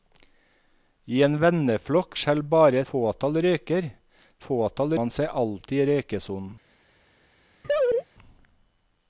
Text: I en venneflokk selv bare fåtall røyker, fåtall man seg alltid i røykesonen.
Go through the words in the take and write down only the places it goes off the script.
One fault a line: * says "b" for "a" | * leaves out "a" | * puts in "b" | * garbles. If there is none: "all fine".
all fine